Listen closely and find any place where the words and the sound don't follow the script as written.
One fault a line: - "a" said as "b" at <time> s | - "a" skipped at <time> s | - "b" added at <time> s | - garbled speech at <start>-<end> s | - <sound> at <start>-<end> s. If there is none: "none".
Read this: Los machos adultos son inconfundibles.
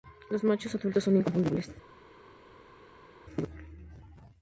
none